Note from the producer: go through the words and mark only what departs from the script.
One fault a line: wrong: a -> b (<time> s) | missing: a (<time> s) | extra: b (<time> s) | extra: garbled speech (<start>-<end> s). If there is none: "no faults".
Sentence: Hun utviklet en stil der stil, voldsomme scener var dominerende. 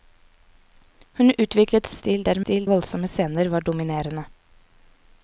no faults